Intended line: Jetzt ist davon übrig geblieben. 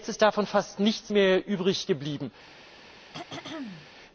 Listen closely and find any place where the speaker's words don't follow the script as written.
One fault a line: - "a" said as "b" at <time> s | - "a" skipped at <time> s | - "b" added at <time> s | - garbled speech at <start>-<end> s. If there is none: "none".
- "fast nichts mehr" added at 0.5 s